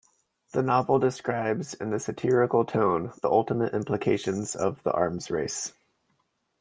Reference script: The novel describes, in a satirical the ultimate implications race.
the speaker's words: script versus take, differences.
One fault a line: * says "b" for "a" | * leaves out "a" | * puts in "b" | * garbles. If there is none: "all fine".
* puts in "tone"
* puts in "of the arms"